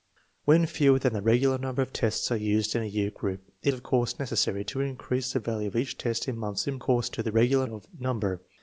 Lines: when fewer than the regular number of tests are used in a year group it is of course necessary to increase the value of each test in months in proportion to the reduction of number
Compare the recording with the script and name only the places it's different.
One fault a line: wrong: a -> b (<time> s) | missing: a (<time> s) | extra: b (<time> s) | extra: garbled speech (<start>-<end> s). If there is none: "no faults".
missing: is (3.7 s)
wrong: proportion -> course (6.8 s)
wrong: reduction -> regular (7.3 s)